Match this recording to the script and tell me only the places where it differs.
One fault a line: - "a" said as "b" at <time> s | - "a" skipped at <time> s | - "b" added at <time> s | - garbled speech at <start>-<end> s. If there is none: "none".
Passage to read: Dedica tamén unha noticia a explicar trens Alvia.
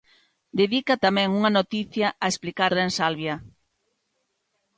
none